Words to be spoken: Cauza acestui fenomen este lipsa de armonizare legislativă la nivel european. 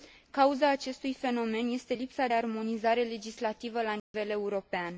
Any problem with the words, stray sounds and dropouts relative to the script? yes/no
yes